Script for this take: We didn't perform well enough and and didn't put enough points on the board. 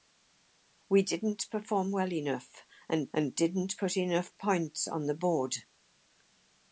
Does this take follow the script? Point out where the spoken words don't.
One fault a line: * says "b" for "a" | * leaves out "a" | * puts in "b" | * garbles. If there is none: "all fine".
all fine